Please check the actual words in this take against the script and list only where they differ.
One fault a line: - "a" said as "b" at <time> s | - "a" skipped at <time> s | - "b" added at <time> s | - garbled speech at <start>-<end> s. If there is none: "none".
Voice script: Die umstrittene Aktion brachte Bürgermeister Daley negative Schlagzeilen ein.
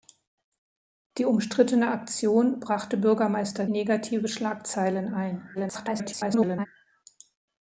- "Daley" skipped at 3.7 s
- garbled speech at 5.5-6.7 s